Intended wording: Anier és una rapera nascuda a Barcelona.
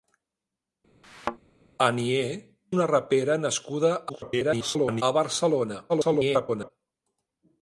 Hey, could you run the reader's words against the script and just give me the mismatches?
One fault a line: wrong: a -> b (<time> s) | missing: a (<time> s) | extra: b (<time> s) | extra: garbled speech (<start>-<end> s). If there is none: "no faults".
missing: és (2.3 s)
extra: garbled speech (4.1-5.0 s)
extra: garbled speech (5.9-6.7 s)